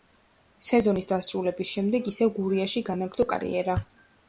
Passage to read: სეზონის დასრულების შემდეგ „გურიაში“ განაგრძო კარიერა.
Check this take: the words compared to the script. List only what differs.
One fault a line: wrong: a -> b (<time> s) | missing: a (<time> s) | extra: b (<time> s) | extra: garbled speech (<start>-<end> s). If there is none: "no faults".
extra: ისევ (2.1 s)